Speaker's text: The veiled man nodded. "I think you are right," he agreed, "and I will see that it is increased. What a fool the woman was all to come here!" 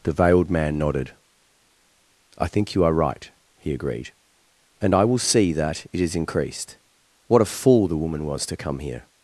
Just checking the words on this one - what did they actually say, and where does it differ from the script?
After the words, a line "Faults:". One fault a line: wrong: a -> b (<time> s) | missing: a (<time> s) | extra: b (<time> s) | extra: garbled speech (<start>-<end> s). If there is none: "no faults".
The veiled man nodded. "I think you are right," he agreed, "and I will see that it is increased. What a fool the woman was to come here!"
Faults:
missing: all (8.5 s)